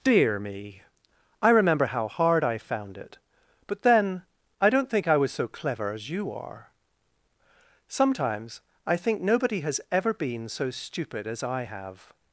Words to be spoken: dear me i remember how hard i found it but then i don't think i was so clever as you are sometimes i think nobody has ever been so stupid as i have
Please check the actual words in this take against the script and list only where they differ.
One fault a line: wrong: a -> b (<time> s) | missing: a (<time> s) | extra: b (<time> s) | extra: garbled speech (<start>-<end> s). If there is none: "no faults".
no faults